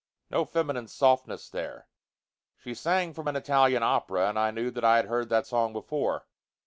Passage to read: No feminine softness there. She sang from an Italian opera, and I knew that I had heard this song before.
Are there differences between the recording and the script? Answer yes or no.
yes